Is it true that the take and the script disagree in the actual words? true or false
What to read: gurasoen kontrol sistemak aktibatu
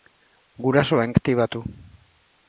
true